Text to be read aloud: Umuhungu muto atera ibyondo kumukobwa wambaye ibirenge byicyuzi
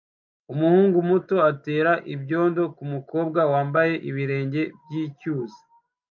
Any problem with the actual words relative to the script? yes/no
no